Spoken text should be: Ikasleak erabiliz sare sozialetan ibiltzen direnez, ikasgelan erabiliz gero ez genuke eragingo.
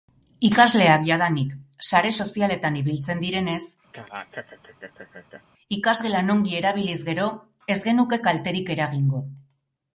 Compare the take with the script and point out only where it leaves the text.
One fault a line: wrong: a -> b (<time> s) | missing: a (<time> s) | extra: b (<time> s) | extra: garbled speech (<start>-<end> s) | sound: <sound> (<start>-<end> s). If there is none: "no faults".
wrong: erabiliz -> jadanik (1.1 s)
sound: laugh (3.9-5.4 s)
extra: ongi (6.4 s)
extra: kalterik (8.3 s)